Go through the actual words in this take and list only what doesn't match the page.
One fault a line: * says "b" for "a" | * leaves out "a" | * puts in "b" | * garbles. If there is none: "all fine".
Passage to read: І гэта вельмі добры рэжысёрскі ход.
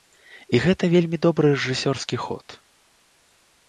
all fine